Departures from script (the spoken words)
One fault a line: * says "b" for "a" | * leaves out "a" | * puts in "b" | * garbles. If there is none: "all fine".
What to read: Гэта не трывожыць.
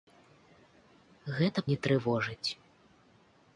all fine